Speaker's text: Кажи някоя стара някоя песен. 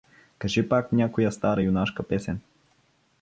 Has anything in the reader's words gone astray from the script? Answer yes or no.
yes